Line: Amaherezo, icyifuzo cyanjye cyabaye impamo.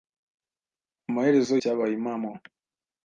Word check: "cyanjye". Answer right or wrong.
wrong